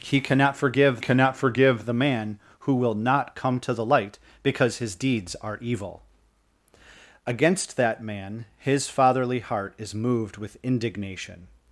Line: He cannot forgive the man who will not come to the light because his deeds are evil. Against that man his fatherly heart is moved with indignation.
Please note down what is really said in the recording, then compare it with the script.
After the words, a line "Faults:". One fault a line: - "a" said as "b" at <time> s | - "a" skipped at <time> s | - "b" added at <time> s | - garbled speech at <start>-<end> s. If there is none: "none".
He cannot forgive cannot forgive the man who will not come to the light because his deeds are evil. Against that man his fatherly heart is moved with indignation.
Faults:
- "cannot forgive" added at 1.0 s